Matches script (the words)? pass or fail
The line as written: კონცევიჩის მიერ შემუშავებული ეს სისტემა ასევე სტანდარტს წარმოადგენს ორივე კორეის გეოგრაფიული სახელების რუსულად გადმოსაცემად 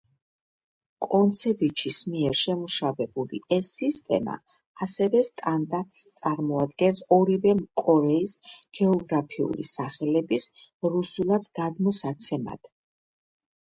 pass